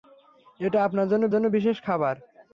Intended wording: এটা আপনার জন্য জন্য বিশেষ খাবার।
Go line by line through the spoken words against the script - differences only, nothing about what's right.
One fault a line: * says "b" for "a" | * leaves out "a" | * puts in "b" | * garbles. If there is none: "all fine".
all fine